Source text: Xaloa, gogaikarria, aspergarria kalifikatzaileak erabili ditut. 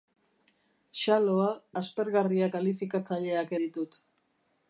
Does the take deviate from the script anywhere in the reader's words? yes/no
yes